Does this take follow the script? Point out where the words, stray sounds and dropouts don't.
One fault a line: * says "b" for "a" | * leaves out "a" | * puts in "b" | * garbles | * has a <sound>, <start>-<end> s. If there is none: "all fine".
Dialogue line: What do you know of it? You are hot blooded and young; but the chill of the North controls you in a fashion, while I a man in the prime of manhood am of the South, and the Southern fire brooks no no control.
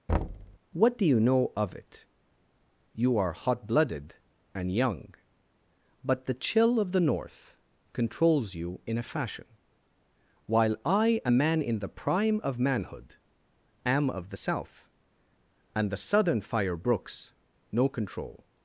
* has a thud, 0.1-0.6 s
* leaves out "no"